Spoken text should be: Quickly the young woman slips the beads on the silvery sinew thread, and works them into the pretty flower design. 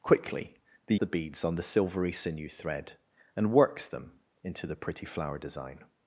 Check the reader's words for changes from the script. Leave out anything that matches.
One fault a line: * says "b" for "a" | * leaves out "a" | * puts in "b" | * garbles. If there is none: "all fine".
* leaves out "young woman slips"